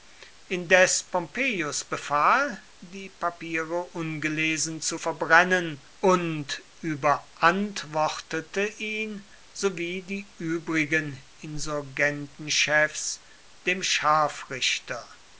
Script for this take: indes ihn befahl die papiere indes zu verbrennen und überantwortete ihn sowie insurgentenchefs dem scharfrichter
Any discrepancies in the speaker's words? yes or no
yes